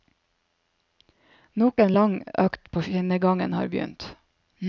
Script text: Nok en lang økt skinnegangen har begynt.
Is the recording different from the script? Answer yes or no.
yes